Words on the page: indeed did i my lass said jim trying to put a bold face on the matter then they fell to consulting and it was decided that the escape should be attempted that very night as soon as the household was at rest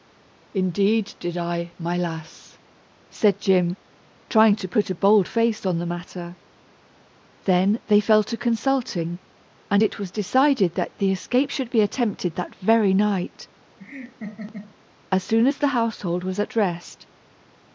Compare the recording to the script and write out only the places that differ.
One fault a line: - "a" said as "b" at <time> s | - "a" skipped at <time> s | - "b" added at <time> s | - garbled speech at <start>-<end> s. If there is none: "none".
none